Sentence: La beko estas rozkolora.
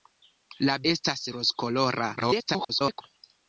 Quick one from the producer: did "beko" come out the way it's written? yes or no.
no